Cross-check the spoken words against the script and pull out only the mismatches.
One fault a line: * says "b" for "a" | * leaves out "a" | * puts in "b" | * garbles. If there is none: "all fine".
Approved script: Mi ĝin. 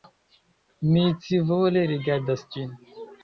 * puts in "scivole rigardas"